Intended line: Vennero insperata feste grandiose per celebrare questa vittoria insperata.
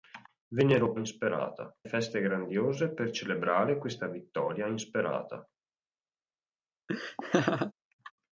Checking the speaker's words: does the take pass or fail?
pass